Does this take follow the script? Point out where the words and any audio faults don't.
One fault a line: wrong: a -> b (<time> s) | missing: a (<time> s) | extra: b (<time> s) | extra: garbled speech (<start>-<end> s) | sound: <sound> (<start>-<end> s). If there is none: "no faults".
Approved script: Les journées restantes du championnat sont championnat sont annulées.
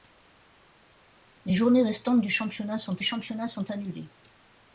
no faults